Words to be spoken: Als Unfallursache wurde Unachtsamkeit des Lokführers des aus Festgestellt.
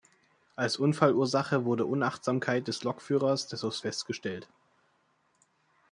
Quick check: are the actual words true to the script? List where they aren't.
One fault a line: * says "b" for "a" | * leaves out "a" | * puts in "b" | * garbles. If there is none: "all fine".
all fine